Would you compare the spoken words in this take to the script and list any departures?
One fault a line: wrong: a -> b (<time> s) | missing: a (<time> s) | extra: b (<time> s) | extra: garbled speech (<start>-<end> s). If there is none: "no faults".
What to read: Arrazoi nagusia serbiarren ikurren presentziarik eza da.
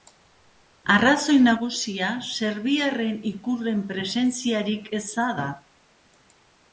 no faults